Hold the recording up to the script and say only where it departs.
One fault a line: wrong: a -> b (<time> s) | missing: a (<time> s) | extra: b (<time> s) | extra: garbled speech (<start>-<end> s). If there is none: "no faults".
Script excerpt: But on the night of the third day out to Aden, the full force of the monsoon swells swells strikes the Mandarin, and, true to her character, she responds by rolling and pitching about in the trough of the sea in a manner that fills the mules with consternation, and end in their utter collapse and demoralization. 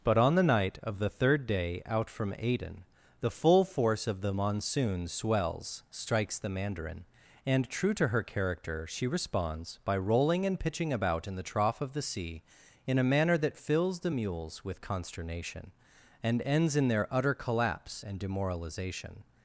wrong: to -> from (2.1 s)
missing: swells (5.8 s)
wrong: end -> ends (16.4 s)